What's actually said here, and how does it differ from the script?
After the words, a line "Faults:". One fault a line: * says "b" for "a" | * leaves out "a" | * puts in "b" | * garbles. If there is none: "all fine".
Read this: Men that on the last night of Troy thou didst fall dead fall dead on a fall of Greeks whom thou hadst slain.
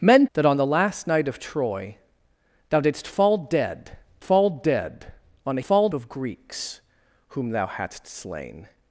Men that on the last night of Troy thou didst fall dead fall dead on a fall of Greeks whom thou hadst slain.
Faults:
all fine